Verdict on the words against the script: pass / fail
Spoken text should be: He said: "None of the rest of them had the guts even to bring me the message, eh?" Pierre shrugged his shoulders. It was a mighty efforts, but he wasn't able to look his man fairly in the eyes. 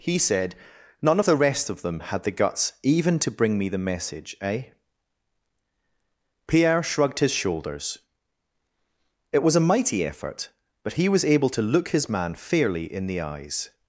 fail